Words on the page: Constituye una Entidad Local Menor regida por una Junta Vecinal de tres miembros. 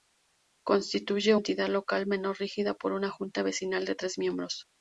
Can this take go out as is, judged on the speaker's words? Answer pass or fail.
fail